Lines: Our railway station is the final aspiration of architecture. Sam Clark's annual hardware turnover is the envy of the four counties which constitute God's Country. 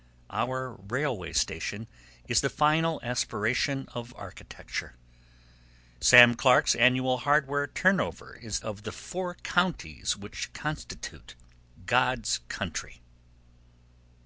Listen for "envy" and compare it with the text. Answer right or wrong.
wrong